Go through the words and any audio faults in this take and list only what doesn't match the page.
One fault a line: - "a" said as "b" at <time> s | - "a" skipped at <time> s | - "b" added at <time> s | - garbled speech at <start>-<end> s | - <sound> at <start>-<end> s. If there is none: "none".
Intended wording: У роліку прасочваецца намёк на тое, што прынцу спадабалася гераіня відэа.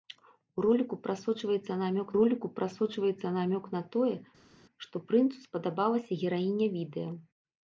- "роліку прасочваецца намёк" added at 2.2 s